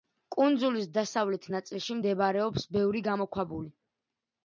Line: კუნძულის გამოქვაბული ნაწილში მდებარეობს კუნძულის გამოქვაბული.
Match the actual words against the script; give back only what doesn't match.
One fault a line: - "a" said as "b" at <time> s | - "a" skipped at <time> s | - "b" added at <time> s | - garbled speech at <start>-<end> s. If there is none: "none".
- "გამოქვაბული" said as "დასავლეთ" at 0.9 s
- "კუნძულის" said as "ბევრი" at 2.8 s